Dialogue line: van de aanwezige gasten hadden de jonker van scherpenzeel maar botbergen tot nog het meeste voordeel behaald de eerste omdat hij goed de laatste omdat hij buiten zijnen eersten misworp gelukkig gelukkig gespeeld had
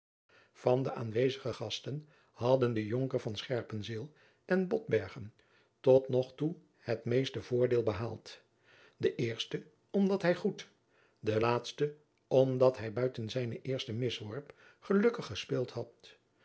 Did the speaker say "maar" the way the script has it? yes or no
no